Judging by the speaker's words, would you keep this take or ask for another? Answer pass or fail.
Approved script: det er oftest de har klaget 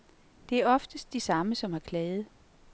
fail